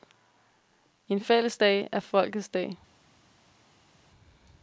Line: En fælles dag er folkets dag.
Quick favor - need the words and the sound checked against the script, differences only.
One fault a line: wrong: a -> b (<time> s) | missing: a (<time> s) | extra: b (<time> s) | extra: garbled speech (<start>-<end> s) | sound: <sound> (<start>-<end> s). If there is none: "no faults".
no faults